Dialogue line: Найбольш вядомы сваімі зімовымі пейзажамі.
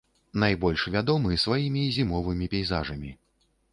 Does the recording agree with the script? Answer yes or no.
yes